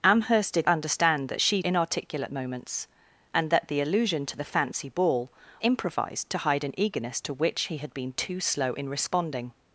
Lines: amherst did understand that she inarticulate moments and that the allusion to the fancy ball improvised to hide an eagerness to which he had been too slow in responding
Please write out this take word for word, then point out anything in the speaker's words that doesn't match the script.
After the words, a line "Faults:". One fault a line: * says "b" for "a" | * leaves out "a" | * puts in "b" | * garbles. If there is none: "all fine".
amherst did understand that she inarticulate moments and that the allusion to the fancy ball improvised to hide an eagerness to which he had been too slow in responding
Faults:
all fine